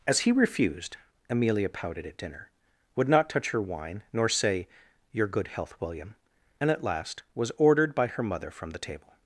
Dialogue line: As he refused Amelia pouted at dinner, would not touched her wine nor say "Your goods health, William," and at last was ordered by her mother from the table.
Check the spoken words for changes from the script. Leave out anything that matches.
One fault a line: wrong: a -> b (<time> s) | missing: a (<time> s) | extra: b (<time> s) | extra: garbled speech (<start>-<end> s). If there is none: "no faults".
wrong: touched -> touch (3.3 s)
wrong: goods -> good (5.3 s)